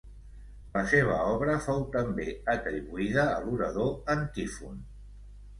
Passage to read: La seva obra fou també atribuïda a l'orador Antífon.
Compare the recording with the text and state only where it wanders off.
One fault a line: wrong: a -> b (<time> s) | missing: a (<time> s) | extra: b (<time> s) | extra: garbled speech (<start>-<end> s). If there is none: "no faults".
no faults